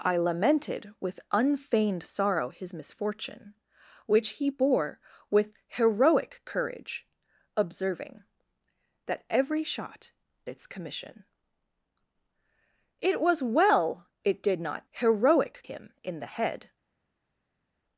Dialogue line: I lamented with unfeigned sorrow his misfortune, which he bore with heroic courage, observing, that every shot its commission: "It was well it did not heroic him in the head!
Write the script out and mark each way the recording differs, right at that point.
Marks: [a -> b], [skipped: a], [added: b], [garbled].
I lamented with unfeigned sorrow his misfortune, which he bore with heroic courage, observing, that every shot its commission: "It was well it did not heroic him in the head!